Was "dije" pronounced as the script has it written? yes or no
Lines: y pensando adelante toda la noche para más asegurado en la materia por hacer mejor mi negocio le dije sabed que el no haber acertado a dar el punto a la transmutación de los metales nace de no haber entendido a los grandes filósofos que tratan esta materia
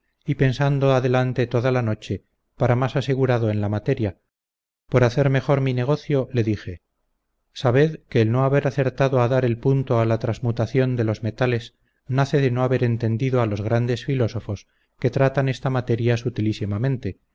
yes